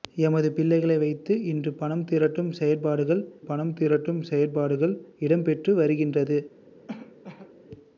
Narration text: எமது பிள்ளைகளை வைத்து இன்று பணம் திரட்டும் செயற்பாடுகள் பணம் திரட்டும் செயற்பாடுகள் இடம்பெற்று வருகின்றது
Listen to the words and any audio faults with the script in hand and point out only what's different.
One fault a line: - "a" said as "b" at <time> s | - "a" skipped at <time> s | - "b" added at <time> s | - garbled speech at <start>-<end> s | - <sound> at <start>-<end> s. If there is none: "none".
- cough at 6.9-7.5 s